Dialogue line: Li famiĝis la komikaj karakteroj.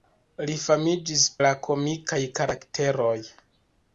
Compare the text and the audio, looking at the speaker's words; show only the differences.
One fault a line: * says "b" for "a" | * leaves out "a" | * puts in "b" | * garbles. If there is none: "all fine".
all fine